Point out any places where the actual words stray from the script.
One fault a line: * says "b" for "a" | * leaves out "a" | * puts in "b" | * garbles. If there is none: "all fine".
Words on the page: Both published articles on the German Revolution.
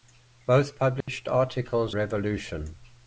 * leaves out "on the German"